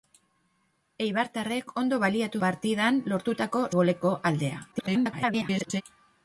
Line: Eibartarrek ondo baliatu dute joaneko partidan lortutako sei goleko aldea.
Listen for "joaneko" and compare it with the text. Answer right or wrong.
wrong